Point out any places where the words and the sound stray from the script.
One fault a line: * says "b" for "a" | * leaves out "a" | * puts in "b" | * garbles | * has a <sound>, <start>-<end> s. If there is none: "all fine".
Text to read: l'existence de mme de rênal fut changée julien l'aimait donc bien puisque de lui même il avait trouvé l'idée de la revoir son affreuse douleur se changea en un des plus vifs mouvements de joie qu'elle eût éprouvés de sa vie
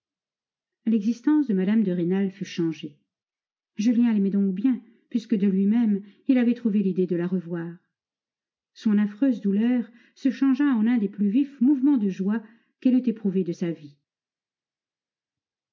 all fine